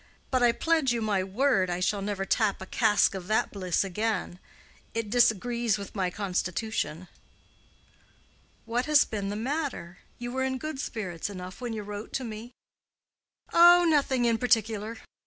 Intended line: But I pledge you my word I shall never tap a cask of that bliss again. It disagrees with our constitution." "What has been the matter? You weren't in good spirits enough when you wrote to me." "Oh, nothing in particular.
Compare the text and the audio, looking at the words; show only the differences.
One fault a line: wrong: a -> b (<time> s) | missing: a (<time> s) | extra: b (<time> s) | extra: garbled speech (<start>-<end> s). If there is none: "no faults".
wrong: our -> my (5.9 s)
wrong: weren't -> were (10.3 s)